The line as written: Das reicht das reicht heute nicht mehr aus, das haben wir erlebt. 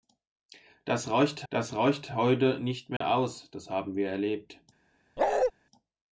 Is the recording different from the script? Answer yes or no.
no